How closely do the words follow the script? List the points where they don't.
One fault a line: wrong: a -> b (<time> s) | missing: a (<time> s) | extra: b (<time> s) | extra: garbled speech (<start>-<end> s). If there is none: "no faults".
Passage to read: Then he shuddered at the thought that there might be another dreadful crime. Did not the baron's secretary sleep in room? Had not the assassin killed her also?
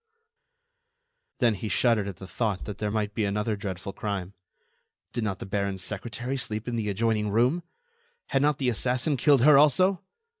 extra: the adjoining (6.8 s)